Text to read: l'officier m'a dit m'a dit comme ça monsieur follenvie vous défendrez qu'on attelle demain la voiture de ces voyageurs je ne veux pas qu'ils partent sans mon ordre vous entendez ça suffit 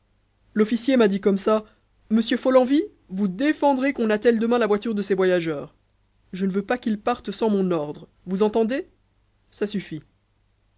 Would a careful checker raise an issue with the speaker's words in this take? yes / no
yes